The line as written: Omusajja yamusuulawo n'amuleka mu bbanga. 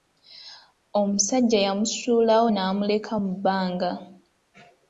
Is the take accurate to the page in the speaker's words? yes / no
yes